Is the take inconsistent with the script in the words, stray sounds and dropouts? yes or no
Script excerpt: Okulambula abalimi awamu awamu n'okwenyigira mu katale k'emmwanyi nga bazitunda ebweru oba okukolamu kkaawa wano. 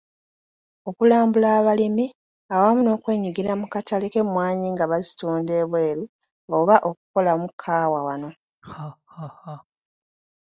yes